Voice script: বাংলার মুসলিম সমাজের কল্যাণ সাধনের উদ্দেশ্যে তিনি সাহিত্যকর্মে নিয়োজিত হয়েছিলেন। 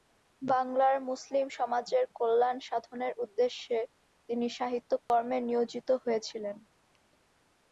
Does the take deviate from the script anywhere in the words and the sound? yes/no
yes